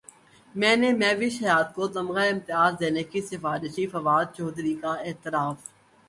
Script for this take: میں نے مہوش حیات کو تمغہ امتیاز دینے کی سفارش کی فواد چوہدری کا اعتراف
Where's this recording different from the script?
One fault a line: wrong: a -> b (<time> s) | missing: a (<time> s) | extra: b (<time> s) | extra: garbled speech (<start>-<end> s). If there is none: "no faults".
no faults